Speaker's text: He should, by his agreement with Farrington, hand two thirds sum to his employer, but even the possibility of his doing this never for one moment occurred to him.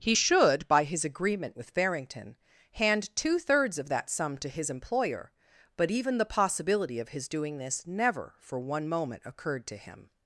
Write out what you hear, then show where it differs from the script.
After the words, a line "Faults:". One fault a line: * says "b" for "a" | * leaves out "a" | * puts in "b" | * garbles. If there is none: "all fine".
He should, by his agreement with Farrington, hand two thirds of that sum to his employer, but even the possibility of his doing this never for one moment occurred to him.
Faults:
* puts in "of that"